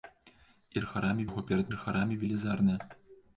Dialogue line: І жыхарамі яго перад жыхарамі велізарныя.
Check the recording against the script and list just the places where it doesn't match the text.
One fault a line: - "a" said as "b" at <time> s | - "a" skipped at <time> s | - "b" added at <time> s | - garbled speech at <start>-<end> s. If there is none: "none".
none